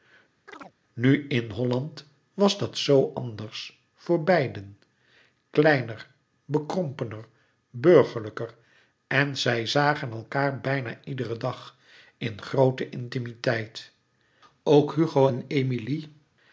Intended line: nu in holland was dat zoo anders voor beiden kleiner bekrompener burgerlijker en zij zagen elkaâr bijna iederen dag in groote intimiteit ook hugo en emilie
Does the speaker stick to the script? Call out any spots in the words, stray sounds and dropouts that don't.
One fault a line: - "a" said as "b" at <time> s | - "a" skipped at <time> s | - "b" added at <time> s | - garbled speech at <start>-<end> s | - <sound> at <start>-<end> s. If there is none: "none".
- chirp at 0.5-0.8 s